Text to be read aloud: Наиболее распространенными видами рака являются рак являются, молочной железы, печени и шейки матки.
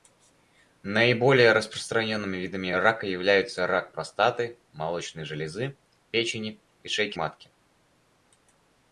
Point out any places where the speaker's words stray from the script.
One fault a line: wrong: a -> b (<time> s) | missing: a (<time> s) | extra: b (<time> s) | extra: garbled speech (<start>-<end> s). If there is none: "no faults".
wrong: являются -> простаты (3.9 s)